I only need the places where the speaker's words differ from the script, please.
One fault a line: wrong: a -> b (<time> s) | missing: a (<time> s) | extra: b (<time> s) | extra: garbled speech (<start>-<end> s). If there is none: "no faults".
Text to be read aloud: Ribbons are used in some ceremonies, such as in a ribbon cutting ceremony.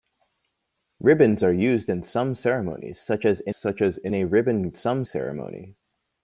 extra: such as in (3.5 s)
wrong: cutting -> some (4.7 s)